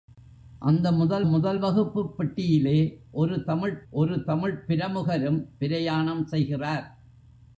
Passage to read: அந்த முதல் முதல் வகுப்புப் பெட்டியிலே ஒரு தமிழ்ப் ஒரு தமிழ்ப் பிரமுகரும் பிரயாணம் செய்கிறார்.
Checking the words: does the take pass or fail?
pass